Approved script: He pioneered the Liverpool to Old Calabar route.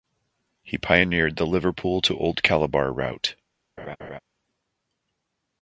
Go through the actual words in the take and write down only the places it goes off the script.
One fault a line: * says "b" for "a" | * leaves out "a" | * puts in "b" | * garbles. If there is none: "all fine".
all fine